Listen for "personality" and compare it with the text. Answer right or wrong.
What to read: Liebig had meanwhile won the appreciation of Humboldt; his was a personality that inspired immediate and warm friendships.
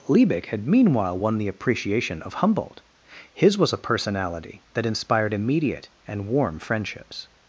right